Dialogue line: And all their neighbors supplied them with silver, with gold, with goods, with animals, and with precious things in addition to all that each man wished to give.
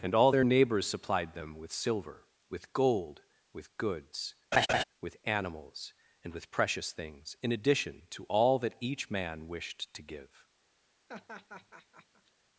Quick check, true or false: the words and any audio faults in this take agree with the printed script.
false